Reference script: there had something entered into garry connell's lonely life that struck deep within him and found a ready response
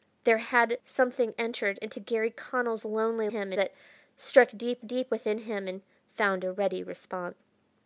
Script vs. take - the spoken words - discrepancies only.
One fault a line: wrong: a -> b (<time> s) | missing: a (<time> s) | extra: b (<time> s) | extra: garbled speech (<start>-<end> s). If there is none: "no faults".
wrong: life -> him (3.2 s)
extra: deep (4.8 s)